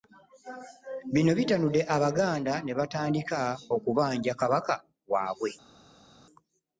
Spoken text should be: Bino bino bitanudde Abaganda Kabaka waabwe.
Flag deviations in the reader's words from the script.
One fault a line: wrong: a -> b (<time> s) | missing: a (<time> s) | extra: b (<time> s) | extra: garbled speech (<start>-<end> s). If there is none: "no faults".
missing: bino (1.3 s)
extra: ne batandika okubanja (2.6 s)